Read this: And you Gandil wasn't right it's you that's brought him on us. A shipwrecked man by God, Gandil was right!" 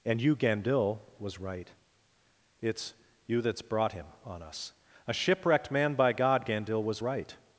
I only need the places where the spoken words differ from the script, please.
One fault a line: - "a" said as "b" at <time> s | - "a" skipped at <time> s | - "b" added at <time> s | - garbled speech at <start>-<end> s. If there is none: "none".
- "wasn't" said as "was" at 1.2 s